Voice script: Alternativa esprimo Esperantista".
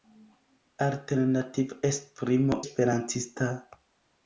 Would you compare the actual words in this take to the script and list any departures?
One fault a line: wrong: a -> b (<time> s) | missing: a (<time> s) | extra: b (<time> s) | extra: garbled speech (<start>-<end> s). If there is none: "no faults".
no faults